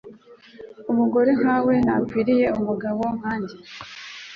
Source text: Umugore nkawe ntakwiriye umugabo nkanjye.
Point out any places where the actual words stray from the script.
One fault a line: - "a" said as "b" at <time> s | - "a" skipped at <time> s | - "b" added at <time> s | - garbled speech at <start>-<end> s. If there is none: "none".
none